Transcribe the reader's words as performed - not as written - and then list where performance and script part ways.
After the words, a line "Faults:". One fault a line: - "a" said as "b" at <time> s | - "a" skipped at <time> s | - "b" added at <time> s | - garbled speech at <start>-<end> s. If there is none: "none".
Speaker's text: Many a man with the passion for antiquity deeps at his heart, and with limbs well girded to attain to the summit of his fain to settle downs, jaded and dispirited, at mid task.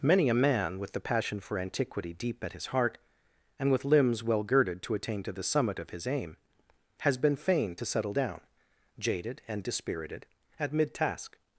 Many a man with the passion for antiquity deep at his heart, and with limbs well girded to attain to the summit of his aim, has been fain to settle down, jaded and dispirited, at mid task.
Faults:
- "deeps" said as "deep" at 2.1 s
- "aim has been" added at 6.1 s
- "downs" said as "down" at 8.1 s